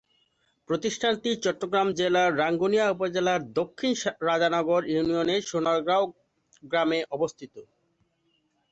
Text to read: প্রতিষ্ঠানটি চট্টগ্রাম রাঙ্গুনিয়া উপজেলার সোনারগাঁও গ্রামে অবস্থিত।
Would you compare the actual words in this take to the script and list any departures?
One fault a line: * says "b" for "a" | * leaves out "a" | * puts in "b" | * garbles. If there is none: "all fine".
* puts in "জেলার"
* puts in "দক্ষিণ রাজানগর ইউনিয়নের"